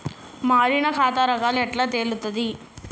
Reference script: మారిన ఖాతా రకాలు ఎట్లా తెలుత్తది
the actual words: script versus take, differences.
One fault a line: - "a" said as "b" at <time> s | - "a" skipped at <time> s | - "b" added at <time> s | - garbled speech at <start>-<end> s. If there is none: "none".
none